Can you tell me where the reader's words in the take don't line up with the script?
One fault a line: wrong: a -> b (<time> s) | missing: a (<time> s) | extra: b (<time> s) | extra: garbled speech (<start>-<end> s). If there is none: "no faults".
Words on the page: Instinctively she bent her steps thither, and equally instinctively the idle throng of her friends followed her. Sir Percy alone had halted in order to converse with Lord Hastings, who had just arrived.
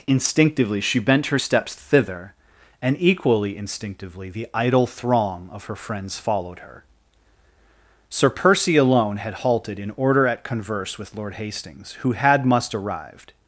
wrong: to -> at (10.3 s)
wrong: just -> must (12.4 s)